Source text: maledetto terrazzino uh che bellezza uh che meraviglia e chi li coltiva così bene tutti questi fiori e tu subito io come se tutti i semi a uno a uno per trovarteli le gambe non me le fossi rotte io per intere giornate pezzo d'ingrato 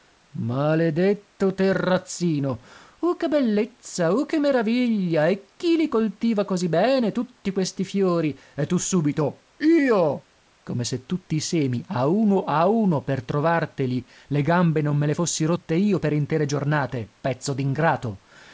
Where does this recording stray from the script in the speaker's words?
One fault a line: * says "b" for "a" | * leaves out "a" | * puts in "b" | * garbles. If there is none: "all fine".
all fine